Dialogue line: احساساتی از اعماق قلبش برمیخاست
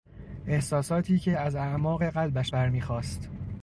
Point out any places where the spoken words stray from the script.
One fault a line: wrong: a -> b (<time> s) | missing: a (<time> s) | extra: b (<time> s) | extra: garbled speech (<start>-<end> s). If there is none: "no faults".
extra: که (1.2 s)